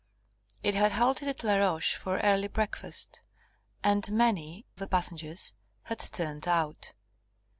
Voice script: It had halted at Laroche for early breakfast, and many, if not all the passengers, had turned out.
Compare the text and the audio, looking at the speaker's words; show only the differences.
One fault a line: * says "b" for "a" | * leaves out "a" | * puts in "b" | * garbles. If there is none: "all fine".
* leaves out "if not all"